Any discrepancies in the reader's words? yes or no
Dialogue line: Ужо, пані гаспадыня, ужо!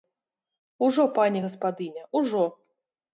no